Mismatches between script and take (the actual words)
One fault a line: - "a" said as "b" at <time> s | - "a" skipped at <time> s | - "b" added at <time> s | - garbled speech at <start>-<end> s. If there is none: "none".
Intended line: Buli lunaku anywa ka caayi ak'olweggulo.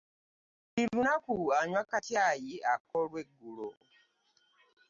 none